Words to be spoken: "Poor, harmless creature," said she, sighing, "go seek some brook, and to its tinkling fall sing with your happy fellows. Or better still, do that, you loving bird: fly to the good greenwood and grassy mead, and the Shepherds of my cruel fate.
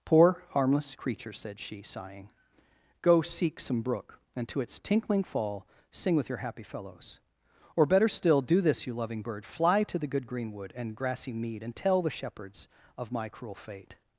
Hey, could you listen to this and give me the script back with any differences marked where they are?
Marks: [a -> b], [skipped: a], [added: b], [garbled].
"Poor, harmless creature," said she, sighing, "go seek some brook, and to its tinkling fall sing with your happy fellows. Or better still, do [that, -> this] you loving bird: fly to the good greenwood and grassy mead, and [added: tell] the Shepherds of my cruel fate.